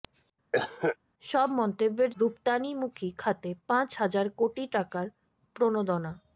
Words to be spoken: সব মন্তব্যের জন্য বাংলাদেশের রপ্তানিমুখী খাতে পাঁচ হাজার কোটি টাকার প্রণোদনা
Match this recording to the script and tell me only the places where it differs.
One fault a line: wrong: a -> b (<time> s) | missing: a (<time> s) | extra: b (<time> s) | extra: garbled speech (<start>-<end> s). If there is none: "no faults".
missing: জন্য বাংলাদেশের (2.1 s)